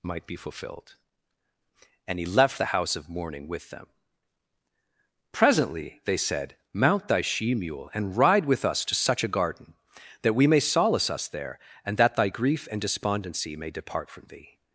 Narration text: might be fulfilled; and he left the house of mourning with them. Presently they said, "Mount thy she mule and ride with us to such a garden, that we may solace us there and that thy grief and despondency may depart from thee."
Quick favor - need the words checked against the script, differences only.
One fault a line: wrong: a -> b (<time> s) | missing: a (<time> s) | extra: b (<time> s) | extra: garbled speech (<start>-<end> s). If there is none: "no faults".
no faults